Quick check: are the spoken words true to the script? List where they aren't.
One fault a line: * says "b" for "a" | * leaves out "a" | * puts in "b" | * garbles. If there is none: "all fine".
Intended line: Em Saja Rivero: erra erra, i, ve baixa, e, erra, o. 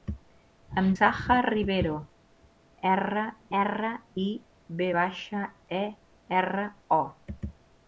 all fine